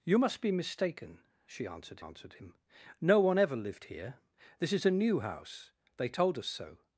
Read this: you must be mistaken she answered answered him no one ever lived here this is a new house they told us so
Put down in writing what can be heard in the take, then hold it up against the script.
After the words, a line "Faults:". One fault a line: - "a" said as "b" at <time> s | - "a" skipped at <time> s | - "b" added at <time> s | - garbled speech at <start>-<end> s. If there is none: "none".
you must be mistaken she answered answered him no one ever lived here this is a new house they told us so
Faults:
none